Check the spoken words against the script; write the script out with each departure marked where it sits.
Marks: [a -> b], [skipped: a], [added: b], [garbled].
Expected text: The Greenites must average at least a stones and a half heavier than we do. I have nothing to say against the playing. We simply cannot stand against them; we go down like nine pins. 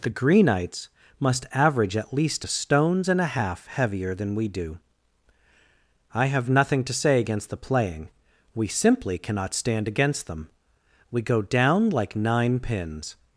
The Greenites must average at least a stones and a half heavier than we do. I have nothing to say against the playing. We simply cannot stand against them; we go down like nine pins.